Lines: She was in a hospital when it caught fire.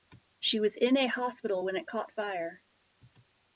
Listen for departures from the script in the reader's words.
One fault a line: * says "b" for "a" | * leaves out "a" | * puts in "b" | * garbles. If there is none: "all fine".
all fine